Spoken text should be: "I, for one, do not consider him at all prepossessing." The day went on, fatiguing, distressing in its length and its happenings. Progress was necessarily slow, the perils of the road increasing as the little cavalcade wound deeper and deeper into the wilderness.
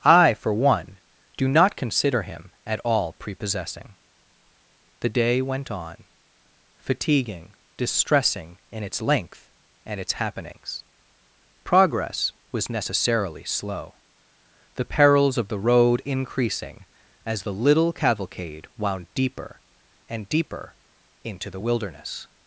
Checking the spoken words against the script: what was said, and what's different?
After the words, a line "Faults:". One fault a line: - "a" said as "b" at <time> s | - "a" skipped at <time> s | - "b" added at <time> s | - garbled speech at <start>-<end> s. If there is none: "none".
"I, for one, do not consider him at all prepossessing." The day went on, fatiguing, distressing in its length and its happenings. Progress was necessarily slow, the perils of the road increasing as the little cavalcade wound deeper and deeper into the wilderness.
Faults:
none